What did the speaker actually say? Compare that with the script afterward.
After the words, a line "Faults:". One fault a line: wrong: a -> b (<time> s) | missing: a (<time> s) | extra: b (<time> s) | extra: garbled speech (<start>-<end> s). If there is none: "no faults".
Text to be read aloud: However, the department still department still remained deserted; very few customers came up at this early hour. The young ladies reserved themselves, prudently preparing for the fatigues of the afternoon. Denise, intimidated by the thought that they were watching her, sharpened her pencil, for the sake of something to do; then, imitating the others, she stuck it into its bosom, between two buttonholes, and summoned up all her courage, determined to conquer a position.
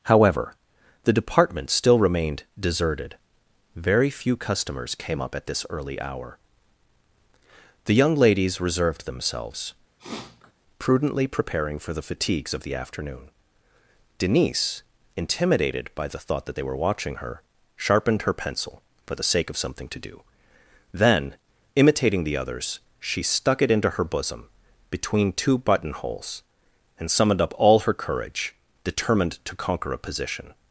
However, the department still remained deserted; very few customers came up at this early hour. The young ladies reserved themselves, prudently preparing for the fatigues of the afternoon. Denise, intimidated by the thought that they were watching her, sharpened her pencil, for the sake of something to do; then, imitating the others, she stuck it into her bosom, between two buttonholes, and summoned up all her courage, determined to conquer a position.
Faults:
missing: department still (2.0 s)
wrong: its -> her (23.9 s)